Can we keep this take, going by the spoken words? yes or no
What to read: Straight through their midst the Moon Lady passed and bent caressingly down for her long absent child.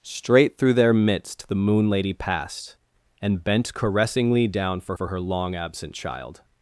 no